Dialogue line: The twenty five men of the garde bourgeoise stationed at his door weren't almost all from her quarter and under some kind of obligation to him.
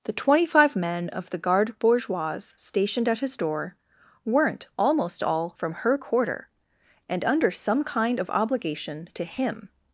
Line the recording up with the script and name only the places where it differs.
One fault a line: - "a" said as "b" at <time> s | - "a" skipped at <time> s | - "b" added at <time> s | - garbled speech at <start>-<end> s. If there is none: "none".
none